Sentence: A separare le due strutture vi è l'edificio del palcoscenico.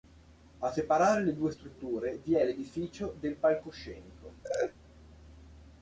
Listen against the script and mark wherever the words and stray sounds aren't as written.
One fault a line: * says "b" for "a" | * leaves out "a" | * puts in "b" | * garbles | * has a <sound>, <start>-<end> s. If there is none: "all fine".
* has a laugh, 4.4-4.7 s